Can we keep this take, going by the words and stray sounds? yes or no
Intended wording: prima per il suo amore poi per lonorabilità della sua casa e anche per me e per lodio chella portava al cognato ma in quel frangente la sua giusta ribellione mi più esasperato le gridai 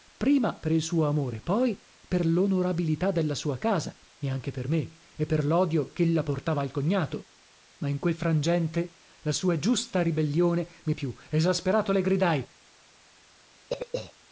no